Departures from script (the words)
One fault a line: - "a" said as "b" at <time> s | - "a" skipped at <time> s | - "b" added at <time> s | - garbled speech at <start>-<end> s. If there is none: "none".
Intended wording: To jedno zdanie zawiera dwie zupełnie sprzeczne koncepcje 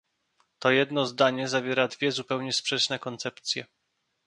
none